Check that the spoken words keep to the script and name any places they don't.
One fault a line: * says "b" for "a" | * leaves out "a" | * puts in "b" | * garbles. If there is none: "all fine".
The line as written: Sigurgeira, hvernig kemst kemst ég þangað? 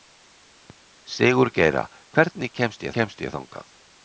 all fine